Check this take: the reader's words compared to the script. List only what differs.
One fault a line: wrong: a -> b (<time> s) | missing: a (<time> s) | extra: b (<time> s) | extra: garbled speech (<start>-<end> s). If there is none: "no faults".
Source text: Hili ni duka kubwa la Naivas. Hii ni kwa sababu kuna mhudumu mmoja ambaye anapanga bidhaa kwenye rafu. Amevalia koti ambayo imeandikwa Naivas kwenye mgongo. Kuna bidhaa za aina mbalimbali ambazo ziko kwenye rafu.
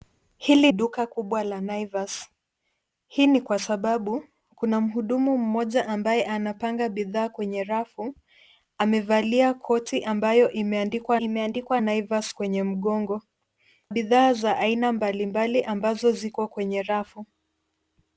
missing: ni (0.7 s)
extra: imeandikwa (11.2 s)
missing: Kuna (13.2 s)